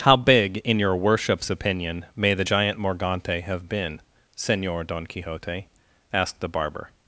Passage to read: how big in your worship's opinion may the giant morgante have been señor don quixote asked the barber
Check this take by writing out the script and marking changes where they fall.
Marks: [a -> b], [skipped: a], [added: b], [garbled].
how big in your worship's opinion may the giant morgante have been señor don quixote asked the barber